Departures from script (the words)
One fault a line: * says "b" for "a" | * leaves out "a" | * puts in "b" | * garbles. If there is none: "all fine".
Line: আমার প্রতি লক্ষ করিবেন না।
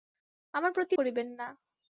* leaves out "লক্ষ"